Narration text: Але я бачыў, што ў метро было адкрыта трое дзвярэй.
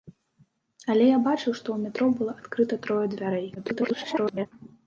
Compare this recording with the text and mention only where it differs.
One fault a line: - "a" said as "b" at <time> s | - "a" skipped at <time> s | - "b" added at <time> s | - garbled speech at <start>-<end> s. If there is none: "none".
- garbled speech at 3.5-4.5 s